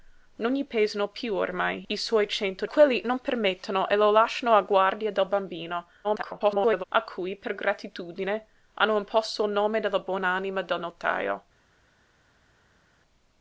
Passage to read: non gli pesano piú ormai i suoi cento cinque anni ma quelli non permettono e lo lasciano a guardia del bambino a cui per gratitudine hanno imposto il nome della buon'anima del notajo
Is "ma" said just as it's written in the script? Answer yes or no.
no